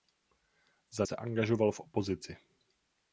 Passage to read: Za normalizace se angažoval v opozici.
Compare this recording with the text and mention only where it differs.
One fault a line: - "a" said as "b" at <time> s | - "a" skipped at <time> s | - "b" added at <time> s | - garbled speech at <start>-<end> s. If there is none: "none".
- "normalizace" skipped at 1.1 s